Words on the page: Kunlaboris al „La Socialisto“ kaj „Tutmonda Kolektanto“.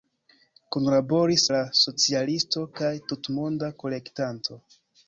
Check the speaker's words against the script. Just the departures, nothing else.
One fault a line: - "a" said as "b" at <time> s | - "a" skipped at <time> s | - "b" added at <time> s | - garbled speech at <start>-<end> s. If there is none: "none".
- "al" skipped at 1.4 s